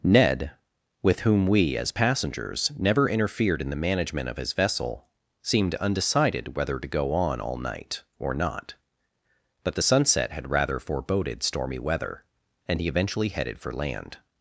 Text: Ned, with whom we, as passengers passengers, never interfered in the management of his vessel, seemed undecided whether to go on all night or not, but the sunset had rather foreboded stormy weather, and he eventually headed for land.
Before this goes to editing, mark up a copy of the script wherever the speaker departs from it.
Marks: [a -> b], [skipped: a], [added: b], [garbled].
Ned, with whom we, as passengers [skipped: passengers,] never interfered in the management of his vessel, seemed undecided whether to go on all night or not, but the sunset had rather foreboded stormy weather, and he eventually headed for land.